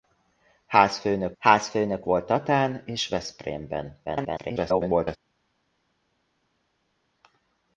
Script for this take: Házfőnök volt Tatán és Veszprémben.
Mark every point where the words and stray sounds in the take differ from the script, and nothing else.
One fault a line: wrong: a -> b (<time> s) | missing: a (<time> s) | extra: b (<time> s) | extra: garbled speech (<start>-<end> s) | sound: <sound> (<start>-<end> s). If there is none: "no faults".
extra: házfőnök (1.4 s)
extra: garbled speech (4.0-5.2 s)